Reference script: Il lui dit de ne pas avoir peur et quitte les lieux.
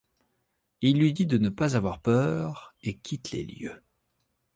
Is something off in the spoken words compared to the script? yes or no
no